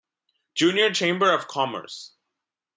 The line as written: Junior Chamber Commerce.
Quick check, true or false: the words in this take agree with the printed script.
false